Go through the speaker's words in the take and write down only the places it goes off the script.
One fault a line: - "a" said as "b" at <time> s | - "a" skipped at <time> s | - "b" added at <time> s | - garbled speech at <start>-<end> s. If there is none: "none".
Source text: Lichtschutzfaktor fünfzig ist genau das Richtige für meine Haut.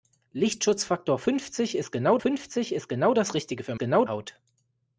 - "fünfzig ist genau" added at 2.2 s
- "meine" said as "genau" at 3.8 s